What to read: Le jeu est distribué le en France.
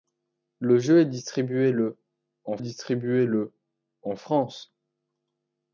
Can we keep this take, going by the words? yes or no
no